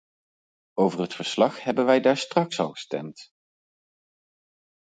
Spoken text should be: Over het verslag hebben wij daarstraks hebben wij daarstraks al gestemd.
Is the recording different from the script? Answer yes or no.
yes